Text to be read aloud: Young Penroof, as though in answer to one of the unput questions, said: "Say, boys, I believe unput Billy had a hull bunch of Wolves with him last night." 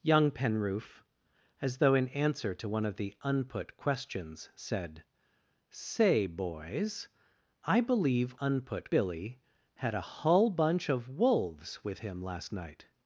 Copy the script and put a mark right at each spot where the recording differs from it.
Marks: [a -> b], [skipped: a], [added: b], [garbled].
Young Penroof, as though in answer to one of the unput questions, said: "Say, boys, I believe unput Billy had a hull bunch of Wolves with him last night."